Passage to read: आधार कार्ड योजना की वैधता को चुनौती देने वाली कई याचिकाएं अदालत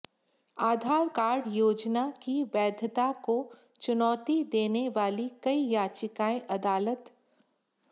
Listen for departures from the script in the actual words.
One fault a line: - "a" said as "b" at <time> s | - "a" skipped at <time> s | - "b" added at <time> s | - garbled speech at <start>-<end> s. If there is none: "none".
none